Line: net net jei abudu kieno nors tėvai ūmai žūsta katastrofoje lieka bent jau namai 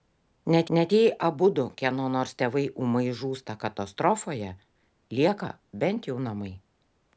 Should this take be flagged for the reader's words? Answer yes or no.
no